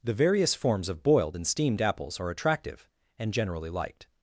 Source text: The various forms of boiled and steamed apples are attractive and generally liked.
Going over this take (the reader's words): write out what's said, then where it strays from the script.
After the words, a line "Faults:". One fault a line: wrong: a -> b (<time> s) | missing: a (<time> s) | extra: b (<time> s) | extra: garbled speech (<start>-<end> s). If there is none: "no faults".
The various forms of boiled and steamed apples are attractive and generally liked.
Faults:
no faults